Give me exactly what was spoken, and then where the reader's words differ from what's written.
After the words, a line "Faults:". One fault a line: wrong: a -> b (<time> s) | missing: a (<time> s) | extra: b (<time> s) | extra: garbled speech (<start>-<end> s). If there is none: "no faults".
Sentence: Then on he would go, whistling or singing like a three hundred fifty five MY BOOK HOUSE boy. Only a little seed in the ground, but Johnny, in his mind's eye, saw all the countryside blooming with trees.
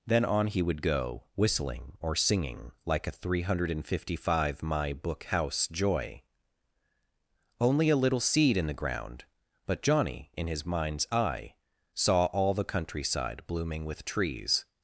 Then on he would go, whistling or singing like a three hundred fifty five MY BOOK HOUSE joy. Only a little seed in the ground, but Johnny, in his mind's eye, saw all the countryside blooming with trees.
Faults:
wrong: boy -> joy (5.7 s)